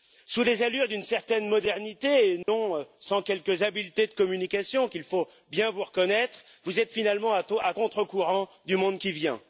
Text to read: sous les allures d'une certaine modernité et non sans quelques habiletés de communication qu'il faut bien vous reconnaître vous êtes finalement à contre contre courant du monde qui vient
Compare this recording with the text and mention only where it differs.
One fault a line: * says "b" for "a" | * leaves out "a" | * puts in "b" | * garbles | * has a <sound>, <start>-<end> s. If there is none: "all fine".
* has a dropout, 2.4-2.5 s
* leaves out "contre"